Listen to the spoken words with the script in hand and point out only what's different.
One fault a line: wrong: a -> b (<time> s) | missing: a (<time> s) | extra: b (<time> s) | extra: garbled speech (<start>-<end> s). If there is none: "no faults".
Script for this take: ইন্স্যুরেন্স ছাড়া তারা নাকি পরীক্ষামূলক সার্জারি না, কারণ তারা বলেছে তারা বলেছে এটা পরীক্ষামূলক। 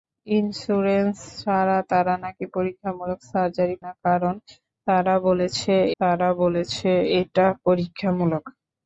no faults